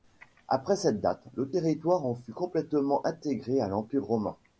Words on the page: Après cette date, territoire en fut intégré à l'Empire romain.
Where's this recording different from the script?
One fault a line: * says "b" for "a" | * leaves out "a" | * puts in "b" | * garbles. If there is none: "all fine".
* puts in "le"
* puts in "complètement"